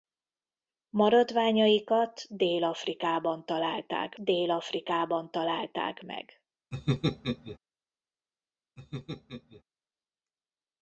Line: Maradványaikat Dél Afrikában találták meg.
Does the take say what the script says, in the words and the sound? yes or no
no